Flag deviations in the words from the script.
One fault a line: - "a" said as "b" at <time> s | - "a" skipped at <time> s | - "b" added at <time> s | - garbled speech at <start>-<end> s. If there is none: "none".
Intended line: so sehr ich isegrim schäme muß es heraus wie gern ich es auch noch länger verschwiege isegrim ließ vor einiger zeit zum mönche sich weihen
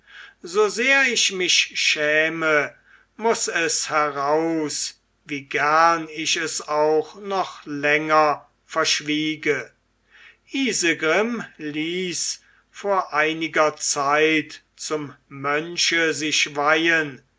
- "isegrim" said as "mich" at 1.3 s